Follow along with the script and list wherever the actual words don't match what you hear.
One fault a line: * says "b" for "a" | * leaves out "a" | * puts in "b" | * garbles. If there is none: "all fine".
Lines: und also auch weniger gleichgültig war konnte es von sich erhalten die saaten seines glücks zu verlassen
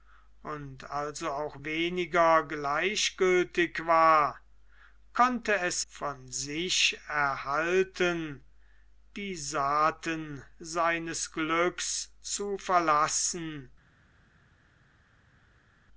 all fine